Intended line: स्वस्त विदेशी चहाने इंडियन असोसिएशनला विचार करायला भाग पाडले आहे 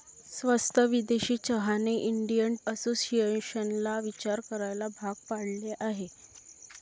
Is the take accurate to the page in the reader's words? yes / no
yes